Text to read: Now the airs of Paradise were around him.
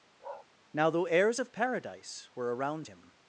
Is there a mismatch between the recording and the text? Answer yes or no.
yes